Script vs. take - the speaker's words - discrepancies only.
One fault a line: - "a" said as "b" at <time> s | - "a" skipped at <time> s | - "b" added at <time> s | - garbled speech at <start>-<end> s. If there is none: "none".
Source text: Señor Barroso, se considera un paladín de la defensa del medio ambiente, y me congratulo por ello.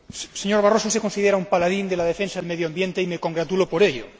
none